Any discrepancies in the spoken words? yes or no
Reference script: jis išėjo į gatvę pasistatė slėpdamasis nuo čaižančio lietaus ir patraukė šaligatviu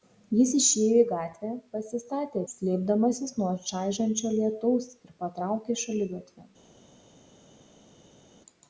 no